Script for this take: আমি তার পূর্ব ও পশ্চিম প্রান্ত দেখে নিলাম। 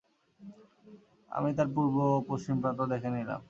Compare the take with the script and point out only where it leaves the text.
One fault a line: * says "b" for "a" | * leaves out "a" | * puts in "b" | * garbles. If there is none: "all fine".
all fine